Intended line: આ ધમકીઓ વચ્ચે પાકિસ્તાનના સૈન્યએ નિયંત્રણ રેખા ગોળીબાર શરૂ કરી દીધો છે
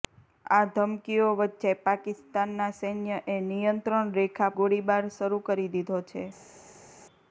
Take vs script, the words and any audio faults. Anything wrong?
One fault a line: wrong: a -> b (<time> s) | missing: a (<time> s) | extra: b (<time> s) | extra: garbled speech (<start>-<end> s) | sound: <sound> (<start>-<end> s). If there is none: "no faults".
no faults